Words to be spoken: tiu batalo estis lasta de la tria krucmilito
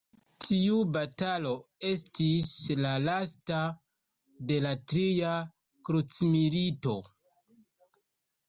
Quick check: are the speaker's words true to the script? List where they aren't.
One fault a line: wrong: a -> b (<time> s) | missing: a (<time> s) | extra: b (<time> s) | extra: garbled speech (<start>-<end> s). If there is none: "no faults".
extra: la (2.8 s)